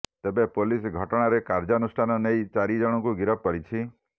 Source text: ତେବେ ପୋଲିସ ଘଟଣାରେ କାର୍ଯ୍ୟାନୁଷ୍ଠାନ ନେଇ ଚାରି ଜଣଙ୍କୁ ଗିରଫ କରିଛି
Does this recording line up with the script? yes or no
yes